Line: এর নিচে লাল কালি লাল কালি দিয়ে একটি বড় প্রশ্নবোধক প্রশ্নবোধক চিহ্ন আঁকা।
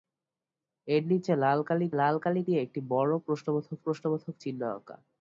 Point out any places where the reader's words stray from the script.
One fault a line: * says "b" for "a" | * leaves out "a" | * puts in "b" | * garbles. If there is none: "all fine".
all fine